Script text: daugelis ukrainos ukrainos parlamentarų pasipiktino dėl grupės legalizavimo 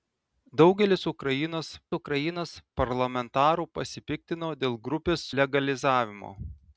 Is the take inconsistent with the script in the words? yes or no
no